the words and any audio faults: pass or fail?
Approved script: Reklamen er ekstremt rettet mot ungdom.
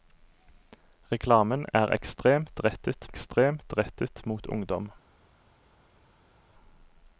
fail